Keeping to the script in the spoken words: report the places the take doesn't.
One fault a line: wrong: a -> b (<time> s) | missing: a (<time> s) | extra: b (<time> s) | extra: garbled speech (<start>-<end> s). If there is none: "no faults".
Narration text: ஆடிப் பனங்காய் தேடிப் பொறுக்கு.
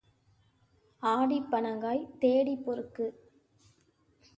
no faults